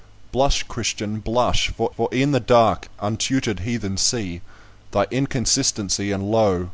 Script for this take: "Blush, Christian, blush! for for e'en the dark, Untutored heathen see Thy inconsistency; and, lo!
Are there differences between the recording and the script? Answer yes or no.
no